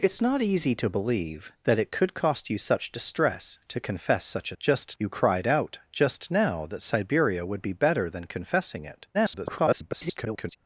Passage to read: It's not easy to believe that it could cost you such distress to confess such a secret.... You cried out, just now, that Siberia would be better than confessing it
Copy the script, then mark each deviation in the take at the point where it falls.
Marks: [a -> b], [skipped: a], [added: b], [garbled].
It's not easy to believe that it could cost you such distress to confess such a [secret.... -> just] You cried out, just now, that Siberia would be better than confessing it [garbled]